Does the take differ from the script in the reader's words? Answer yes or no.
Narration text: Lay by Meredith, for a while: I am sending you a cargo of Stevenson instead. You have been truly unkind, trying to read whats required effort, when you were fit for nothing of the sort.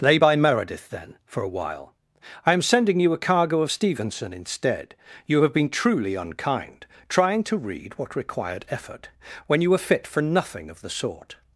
yes